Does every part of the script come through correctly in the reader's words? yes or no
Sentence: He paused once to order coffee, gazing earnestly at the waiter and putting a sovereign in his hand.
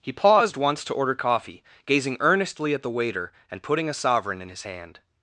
yes